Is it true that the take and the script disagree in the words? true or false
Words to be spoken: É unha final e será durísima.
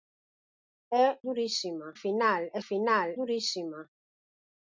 true